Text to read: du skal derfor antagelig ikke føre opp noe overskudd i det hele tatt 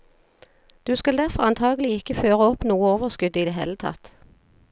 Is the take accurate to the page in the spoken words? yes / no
yes